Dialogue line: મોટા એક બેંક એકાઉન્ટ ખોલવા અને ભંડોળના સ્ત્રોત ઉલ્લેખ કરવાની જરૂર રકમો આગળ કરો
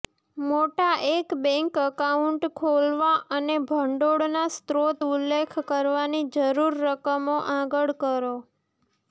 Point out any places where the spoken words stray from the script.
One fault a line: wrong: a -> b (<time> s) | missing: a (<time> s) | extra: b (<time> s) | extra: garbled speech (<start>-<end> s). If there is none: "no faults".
no faults